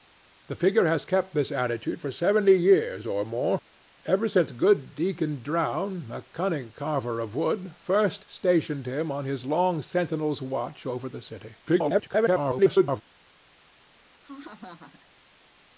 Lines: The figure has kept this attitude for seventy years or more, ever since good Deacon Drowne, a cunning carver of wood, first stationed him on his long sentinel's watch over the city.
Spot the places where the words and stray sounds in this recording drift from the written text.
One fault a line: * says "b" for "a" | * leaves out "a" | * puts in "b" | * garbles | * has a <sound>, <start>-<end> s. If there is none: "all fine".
* garbles
* has a laugh, 14.2-15.1 s